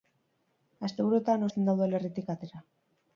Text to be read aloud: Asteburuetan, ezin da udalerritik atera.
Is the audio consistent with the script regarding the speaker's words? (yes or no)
yes